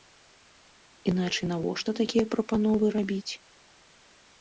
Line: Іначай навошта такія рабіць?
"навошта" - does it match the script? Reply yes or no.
yes